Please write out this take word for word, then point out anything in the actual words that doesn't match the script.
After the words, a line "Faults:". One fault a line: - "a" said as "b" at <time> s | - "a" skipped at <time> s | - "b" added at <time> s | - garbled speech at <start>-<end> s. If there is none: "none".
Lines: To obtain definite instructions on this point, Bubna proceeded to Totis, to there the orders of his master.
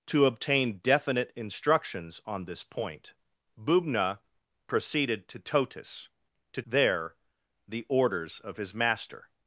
To obtain definite instructions on this point, Bubna proceeded to Totis, to there the orders of his master.
Faults:
none